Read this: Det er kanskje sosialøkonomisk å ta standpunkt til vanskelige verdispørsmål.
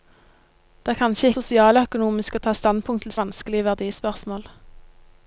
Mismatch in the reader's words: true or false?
false